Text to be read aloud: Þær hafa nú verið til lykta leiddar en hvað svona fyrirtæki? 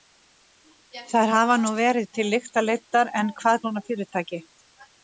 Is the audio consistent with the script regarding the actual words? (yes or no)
yes